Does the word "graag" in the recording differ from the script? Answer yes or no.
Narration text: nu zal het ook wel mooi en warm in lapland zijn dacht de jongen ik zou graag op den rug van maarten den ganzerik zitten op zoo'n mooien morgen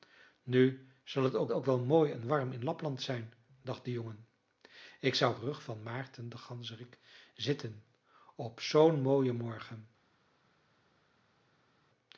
yes